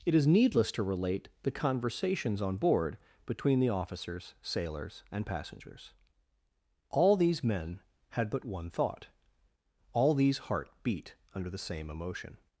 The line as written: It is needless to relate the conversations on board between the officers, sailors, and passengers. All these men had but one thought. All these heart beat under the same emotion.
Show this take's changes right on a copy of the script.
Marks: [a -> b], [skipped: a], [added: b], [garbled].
It is needless to relate the conversations on board between the officers, sailors, and passengers. All these men had but one thought. All these heart beat under the same emotion.